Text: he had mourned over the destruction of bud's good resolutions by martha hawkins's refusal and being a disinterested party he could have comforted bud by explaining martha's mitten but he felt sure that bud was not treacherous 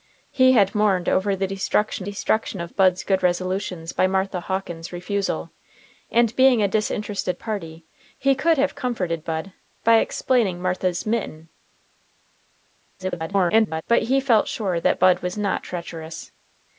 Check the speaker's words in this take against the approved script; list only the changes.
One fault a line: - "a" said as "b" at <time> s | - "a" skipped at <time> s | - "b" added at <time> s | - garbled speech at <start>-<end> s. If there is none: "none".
- "destruction" added at 2.0 s
- garbled speech at 13.0-13.8 s